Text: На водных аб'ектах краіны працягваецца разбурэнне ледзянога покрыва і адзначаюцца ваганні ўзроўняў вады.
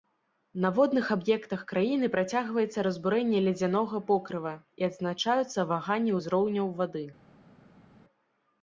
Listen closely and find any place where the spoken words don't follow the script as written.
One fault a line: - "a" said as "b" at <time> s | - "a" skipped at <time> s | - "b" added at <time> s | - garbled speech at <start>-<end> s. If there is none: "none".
none